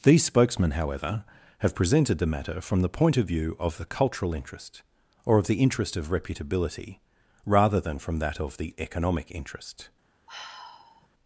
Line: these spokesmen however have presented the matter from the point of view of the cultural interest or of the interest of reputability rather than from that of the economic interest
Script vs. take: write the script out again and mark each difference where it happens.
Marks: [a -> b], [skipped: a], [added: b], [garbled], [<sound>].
these spokesmen however have presented the matter from the point of view of the cultural interest or of the interest of reputability rather than from that of the economic interest [sigh]